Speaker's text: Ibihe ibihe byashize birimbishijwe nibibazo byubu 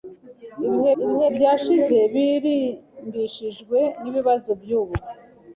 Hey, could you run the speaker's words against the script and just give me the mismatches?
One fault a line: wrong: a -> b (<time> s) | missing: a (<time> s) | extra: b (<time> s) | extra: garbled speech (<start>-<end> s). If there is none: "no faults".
no faults